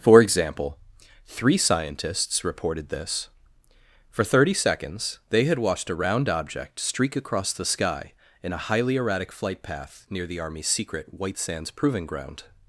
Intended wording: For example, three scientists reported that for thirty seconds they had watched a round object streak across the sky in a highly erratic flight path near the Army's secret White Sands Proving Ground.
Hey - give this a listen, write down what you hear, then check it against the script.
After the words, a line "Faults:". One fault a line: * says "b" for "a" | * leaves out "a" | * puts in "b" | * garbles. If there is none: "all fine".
For example, three scientists reported this for thirty seconds they had watched a round object streak across the sky in a highly erratic flight path near the Army's secret White Sands Proving Ground.
Faults:
* says "this" for "that"